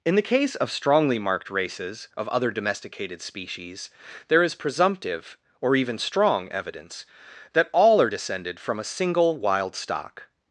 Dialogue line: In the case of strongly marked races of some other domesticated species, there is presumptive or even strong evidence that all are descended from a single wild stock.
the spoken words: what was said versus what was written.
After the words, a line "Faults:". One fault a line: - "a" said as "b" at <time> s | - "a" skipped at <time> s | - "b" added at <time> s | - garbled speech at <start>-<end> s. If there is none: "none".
In the case of strongly marked races of other domesticated species, there is presumptive or even strong evidence that all are descended from a single wild stock.
Faults:
- "some" skipped at 2.3 s